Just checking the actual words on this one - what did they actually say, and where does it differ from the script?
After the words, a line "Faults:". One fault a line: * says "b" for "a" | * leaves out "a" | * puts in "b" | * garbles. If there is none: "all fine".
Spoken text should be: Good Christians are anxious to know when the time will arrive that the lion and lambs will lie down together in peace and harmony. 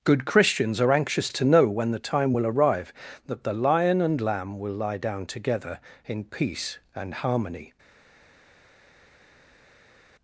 Good Christians are anxious to know when the time will arrive that the lion and lamb will lie down together in peace and harmony.
Faults:
* says "lamb" for "lambs"